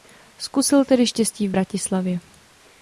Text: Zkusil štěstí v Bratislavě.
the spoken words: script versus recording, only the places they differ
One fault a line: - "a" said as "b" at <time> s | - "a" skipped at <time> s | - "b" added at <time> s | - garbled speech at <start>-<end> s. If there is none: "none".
- "tedy" added at 0.8 s